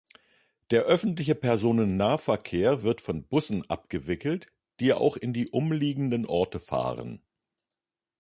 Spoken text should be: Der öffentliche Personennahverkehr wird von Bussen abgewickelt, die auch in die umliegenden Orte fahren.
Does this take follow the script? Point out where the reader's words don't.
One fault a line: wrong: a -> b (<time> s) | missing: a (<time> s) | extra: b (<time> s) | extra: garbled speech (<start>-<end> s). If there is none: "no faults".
no faults